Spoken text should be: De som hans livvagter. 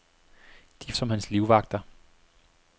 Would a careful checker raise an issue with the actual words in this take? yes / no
no